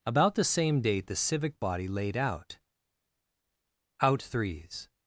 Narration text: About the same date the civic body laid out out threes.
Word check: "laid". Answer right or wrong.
right